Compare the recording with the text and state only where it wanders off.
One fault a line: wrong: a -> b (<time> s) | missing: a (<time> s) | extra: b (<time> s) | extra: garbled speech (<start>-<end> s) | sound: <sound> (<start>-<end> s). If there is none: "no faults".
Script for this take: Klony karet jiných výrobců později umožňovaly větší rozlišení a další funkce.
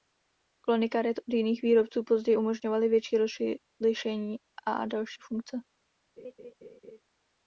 extra: od (1.2 s)
sound: laugh (6.2-7.0 s)